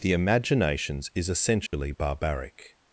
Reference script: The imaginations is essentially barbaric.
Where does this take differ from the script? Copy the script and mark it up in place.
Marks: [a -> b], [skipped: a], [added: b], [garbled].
The imaginations is essentially barbaric.